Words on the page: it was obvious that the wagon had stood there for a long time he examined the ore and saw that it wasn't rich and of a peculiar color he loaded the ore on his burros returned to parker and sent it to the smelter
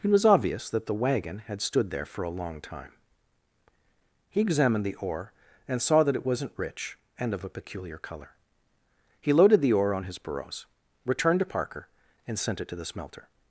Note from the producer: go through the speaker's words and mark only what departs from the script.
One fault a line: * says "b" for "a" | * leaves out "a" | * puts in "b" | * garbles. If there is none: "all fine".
all fine